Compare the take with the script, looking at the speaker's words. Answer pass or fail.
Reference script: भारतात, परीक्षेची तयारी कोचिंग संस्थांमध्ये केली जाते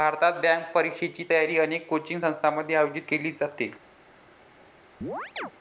fail